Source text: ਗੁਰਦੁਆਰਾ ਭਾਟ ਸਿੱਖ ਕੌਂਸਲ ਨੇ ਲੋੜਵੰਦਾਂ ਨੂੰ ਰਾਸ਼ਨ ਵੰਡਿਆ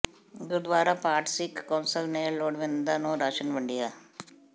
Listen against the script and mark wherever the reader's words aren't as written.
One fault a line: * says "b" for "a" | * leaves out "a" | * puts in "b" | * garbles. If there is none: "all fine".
all fine